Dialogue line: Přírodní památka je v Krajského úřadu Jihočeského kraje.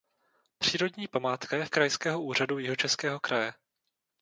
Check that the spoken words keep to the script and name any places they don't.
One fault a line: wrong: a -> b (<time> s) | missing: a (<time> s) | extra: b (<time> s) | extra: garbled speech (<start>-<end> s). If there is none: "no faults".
no faults